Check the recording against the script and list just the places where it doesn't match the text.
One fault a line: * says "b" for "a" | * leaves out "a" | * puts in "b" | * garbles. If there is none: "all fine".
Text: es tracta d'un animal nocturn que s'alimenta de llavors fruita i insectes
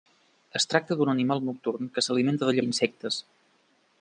* leaves out "llavors fruita"